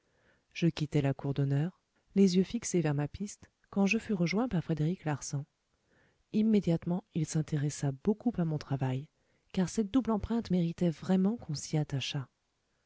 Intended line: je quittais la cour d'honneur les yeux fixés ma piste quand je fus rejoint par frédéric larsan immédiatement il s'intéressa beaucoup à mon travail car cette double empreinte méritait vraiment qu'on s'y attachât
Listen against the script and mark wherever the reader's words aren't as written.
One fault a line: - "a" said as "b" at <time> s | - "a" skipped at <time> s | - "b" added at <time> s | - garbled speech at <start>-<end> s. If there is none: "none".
- "vers" added at 2.8 s